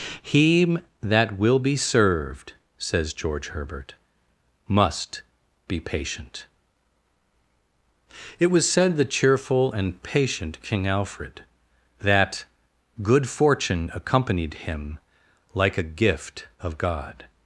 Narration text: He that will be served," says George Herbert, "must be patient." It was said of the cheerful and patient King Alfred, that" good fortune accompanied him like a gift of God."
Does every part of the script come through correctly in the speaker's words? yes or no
no